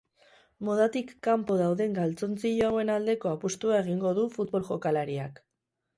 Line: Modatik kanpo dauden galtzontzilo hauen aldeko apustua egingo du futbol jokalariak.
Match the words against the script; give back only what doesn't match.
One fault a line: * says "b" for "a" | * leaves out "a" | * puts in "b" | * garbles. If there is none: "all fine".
all fine